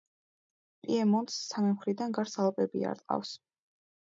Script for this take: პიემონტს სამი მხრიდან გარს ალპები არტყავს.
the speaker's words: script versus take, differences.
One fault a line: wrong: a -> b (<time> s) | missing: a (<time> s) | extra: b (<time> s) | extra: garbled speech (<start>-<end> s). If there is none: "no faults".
no faults